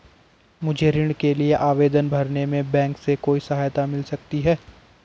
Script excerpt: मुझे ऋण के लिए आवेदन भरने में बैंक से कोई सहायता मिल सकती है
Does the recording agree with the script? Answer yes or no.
yes